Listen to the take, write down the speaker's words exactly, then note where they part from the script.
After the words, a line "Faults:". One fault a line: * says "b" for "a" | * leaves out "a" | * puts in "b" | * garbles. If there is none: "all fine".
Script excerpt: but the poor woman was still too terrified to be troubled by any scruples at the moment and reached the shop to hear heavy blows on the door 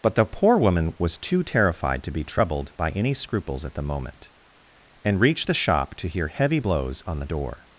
but the poor woman was too terrified to be troubled by any scruples at the moment and reached the shop to hear heavy blows on the door
Faults:
* leaves out "still"